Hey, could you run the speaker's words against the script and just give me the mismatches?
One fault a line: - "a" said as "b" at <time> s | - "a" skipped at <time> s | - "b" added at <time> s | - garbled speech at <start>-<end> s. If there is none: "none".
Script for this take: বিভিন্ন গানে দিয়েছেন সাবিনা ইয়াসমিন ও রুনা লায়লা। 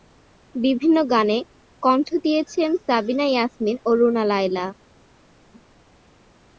- "কণ্ঠ" added at 1.8 s